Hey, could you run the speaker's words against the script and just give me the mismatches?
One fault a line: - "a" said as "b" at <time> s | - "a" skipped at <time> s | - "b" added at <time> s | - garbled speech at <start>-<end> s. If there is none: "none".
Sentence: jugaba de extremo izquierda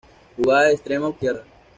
none